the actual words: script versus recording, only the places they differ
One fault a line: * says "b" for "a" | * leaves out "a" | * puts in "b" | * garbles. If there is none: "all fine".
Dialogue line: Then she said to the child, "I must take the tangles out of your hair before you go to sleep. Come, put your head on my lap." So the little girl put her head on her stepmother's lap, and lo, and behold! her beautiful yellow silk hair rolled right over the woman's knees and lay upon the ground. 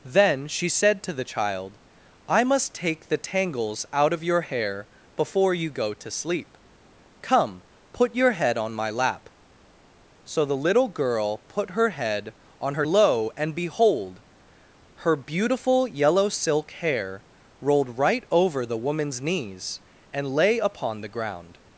* leaves out "stepmother's lap and"